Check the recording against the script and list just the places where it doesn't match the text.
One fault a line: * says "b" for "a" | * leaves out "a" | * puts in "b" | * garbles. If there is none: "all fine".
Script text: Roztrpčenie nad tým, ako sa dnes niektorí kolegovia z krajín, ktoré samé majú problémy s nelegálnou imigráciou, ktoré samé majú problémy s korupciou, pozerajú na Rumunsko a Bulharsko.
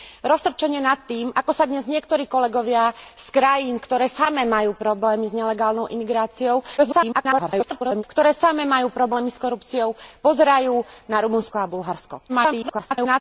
* garbles
* garbles